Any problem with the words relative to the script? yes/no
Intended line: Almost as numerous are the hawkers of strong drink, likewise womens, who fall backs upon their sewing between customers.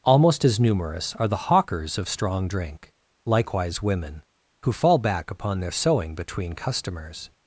yes